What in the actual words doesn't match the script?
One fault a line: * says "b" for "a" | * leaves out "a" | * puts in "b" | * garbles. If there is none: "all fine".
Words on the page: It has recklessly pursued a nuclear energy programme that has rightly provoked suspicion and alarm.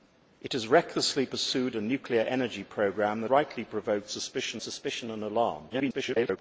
* leaves out "has"
* puts in "suspicion"
* garbles